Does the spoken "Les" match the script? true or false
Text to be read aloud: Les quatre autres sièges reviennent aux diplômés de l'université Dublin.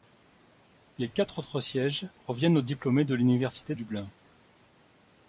true